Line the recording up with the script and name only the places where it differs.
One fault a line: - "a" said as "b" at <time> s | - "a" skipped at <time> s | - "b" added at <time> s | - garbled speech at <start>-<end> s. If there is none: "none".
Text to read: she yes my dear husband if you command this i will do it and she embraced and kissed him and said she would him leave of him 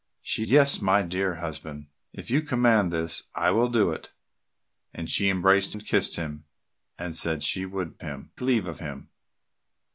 none